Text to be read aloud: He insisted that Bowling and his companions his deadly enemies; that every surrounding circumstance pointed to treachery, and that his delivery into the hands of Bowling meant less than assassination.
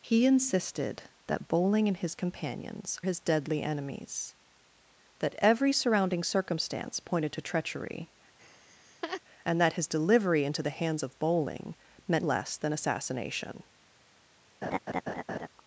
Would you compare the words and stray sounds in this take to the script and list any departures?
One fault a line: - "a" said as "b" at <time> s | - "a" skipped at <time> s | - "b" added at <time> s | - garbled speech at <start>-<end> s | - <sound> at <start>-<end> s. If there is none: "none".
- laugh at 8.4-9.2 s
- laugh at 14.6-15.5 s